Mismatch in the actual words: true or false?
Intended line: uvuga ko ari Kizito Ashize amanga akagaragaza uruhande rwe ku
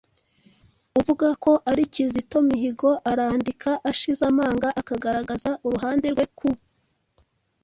true